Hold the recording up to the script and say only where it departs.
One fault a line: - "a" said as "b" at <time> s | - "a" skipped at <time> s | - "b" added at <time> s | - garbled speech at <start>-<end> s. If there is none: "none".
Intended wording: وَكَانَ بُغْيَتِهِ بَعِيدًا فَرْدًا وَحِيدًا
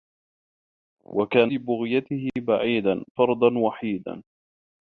none